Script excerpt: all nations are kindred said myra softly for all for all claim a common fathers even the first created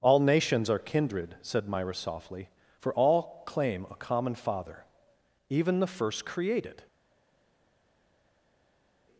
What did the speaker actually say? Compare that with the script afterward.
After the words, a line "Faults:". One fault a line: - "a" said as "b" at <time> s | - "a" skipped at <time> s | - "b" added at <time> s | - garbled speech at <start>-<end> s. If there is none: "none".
all nations are kindred said myra softly for all claim a common father even the first created
Faults:
- "for all" skipped at 3.4 s
- "fathers" said as "father" at 4.3 s